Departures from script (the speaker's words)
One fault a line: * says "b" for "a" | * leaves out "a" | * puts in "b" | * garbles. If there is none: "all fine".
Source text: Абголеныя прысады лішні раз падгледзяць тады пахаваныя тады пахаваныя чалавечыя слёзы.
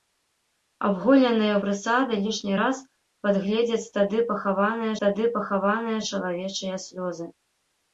all fine